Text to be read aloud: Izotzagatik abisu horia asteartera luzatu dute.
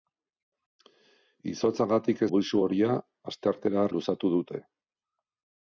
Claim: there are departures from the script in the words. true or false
false